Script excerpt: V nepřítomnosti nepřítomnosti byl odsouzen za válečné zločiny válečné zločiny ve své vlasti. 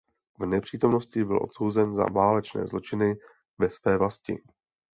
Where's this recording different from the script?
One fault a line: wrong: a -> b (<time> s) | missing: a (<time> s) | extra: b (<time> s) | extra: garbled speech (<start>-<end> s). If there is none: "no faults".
missing: nepřítomnosti (1.2 s)
missing: válečné zločiny (3.1 s)